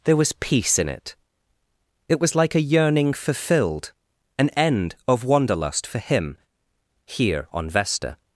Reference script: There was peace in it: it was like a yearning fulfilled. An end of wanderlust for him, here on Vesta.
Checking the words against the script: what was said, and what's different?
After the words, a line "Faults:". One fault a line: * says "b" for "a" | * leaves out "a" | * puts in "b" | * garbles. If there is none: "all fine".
There was peace in it: it was like a yearning fulfilled. An end of wanderlust for him, here on Vesta.
Faults:
all fine